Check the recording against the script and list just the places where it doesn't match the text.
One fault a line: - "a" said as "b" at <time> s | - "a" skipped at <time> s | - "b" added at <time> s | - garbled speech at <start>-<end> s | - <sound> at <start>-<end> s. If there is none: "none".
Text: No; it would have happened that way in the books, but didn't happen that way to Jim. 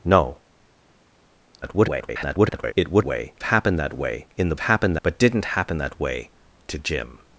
- garbled speech at 1.6-2.7 s
- "have" said as "way" at 3.0 s
- "books" said as "happened" at 4.6 s